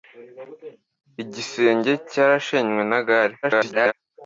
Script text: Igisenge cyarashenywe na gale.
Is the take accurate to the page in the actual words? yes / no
no